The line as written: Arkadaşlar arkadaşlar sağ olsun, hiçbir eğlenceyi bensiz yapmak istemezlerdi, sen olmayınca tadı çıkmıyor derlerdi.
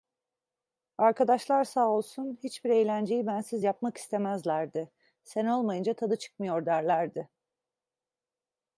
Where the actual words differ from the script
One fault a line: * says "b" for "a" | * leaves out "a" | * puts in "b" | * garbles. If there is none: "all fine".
* leaves out "arkadaşlar"